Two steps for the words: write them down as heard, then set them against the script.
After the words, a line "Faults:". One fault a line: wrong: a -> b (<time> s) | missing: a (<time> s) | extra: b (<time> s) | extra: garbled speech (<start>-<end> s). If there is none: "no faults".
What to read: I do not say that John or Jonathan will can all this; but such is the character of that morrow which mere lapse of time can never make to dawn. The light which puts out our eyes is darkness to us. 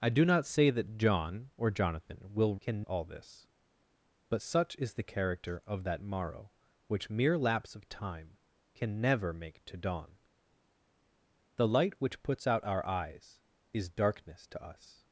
I do not say that John or Jonathan will can all this; but such is the character of that morrow which mere lapse of time can never make to dawn. The light which puts out our eyes is darkness to us.
Faults:
no faults